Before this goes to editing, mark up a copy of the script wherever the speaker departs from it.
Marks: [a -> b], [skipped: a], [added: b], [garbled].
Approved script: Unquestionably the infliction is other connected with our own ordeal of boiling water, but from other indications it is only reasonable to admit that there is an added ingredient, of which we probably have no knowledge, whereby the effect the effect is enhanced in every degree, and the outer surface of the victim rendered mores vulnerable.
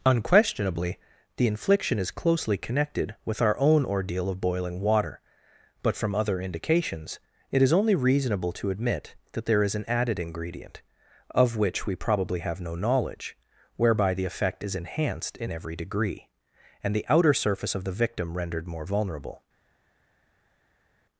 Unquestionably the infliction is [other -> closely] connected with our own ordeal of boiling water, but from other indications it is only reasonable to admit that there is an added ingredient, of which we probably have no knowledge, whereby the effect [skipped: the effect] is enhanced in every degree, and the outer surface of the victim rendered [mores -> more] vulnerable.